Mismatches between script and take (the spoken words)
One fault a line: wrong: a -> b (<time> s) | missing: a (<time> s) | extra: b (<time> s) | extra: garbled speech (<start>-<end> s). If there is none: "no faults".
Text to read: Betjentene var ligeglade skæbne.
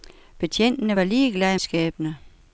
no faults